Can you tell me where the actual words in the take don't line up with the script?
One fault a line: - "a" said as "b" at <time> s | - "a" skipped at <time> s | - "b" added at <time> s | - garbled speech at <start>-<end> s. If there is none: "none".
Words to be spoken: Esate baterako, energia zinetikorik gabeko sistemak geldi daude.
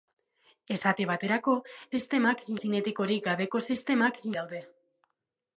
- "energia" said as "sistemak" at 1.9 s
- "geldi" skipped at 4.2 s